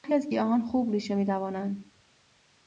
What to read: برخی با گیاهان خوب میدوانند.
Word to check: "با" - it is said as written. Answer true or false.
false